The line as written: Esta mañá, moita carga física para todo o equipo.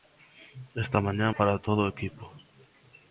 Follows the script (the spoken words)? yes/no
no